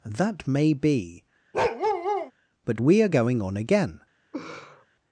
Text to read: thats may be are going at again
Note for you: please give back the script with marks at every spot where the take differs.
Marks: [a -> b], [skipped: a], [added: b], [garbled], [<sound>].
[thats -> that] may be [bark] [added: but we] are going [at -> on] again [laugh]